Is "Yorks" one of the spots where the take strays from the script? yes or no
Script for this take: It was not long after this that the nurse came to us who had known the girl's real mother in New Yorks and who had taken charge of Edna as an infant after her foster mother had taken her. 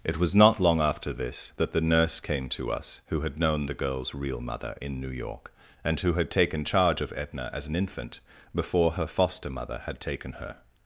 yes